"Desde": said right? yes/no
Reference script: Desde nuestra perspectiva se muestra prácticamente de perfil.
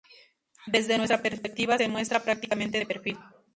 yes